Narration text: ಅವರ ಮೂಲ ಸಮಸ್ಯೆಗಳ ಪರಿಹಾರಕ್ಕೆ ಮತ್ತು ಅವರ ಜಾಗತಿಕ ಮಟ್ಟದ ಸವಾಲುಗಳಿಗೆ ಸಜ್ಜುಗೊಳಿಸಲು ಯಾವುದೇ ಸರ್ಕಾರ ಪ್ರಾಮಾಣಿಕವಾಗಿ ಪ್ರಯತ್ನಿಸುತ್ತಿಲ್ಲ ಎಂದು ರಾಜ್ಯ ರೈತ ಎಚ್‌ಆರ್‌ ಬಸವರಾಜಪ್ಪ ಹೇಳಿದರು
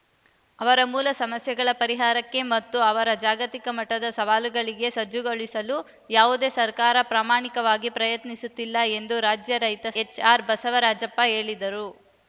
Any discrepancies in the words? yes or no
no